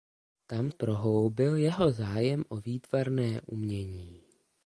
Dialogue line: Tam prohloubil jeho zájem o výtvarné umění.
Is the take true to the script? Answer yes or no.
yes